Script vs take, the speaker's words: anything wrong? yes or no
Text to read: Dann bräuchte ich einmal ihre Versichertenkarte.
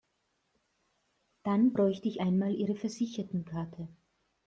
no